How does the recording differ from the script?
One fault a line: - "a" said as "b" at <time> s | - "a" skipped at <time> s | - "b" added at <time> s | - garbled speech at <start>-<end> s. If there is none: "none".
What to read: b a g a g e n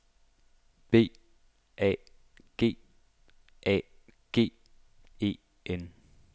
none